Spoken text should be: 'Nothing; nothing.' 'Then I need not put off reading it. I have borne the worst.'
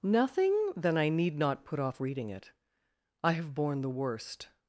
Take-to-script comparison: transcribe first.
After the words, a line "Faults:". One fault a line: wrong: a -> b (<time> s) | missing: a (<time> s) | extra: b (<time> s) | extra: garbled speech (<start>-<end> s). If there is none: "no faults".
'Nothing.' 'Then I need not put off reading it. I have borne the worst.'
Faults:
missing: nothing (0.7 s)